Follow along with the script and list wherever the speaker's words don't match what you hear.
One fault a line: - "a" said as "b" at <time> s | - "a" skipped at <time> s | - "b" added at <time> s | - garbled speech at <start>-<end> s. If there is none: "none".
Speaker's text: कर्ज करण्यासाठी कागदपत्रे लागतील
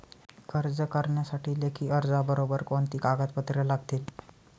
- "लेखी अर्जाबरोबर कोणती" added at 1.6 s